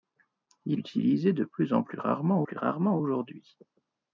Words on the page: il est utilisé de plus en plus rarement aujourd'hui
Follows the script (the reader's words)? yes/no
no